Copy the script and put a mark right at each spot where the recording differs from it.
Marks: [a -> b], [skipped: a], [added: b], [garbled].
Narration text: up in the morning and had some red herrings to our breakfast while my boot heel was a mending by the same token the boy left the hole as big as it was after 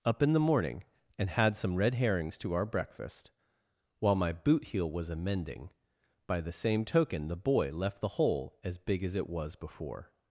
up in the morning and had some red herrings to our breakfast while my boot heel was a mending by the same token the boy left the hole as big as it was [after -> before]